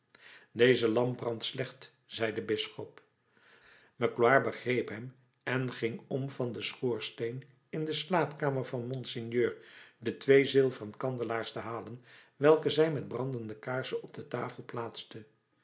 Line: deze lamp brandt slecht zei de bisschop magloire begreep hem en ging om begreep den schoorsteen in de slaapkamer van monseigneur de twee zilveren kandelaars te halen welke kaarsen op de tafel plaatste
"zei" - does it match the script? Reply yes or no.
yes